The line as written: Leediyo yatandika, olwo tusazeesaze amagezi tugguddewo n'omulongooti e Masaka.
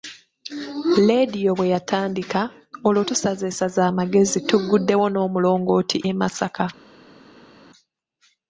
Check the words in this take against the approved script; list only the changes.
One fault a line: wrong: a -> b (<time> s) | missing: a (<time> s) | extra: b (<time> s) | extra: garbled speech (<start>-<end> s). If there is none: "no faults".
extra: bwe (1.6 s)